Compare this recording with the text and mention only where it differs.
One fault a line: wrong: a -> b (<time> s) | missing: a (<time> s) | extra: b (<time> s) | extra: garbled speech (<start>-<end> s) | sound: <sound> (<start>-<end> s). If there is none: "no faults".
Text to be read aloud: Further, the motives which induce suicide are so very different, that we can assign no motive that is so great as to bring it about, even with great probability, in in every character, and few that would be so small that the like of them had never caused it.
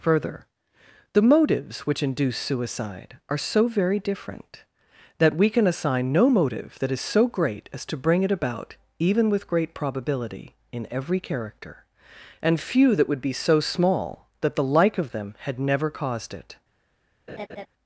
missing: in (10.9 s)
sound: laugh (17.3-17.7 s)